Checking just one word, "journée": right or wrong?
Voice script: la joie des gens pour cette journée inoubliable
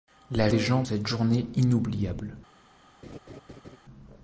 right